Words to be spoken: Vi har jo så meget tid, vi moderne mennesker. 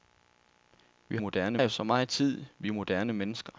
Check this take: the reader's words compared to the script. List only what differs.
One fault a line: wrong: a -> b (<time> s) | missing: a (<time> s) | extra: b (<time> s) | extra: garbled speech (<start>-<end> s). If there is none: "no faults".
wrong: har -> moderne (1.2 s)